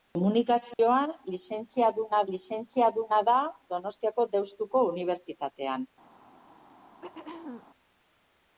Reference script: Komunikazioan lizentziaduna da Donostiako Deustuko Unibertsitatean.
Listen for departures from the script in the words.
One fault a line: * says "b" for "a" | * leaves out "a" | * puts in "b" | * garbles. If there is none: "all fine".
* puts in "lizentziaduna"